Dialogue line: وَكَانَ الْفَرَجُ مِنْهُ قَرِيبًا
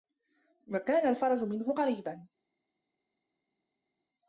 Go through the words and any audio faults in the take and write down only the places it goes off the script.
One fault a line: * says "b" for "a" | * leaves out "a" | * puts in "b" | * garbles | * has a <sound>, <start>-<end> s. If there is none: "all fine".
all fine